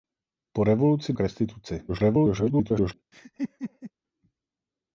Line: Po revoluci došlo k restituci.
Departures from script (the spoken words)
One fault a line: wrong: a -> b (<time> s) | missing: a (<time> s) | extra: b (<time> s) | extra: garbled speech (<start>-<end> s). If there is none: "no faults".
missing: došlo (1.1 s)
extra: garbled speech (1.9-2.9 s)